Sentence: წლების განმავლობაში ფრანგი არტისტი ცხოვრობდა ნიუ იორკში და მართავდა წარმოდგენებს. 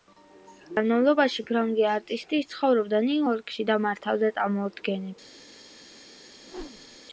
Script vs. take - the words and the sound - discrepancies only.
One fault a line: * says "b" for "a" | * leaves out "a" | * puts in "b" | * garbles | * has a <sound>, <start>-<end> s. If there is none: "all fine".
* has a whoosh, 6.4-7.0 s